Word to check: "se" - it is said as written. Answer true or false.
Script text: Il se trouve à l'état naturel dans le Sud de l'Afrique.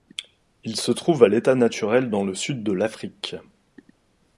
true